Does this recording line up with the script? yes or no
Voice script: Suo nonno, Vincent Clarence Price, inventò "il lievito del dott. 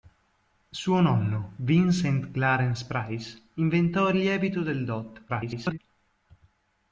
no